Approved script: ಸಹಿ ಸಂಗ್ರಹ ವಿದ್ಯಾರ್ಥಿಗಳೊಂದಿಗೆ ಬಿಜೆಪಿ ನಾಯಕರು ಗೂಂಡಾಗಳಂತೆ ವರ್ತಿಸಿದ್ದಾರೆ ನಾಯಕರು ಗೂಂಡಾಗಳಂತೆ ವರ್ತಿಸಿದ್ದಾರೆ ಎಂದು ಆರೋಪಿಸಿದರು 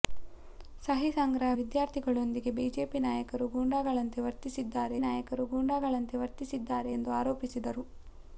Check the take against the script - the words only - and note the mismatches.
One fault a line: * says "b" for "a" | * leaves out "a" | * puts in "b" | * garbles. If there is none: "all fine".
all fine